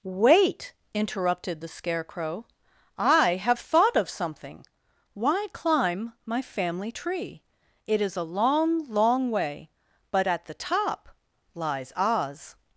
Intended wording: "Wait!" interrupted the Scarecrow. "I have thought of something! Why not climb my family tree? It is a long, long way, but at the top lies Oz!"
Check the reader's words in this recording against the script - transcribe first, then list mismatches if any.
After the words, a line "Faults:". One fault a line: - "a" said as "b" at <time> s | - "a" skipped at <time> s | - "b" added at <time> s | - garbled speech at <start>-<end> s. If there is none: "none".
"Wait!" interrupted the Scarecrow. "I have thought of something! Why climb my family tree? It is a long, long way, but at the top lies Oz!"
Faults:
- "not" skipped at 5.5 s